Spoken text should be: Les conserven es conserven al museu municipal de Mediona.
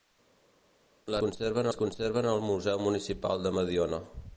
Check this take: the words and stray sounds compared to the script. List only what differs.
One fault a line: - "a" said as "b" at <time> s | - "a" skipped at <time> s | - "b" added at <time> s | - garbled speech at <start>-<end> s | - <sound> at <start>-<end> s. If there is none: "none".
none